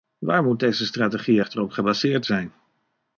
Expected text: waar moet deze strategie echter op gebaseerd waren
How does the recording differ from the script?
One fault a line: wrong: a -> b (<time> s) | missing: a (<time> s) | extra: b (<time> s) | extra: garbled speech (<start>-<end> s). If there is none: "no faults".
wrong: waren -> zijn (2.2 s)